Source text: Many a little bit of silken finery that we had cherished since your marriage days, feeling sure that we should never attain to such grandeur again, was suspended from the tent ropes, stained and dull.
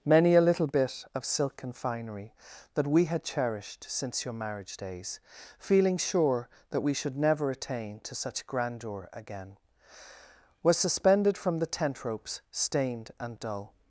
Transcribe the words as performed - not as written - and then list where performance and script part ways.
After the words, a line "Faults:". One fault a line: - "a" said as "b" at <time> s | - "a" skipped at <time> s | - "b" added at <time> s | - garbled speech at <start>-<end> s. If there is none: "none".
Many a little bit of silken finery that we had cherished since your marriage days, feeling sure that we should never attain to such grandeur again, was suspended from the tent ropes, stained and dull.
Faults:
none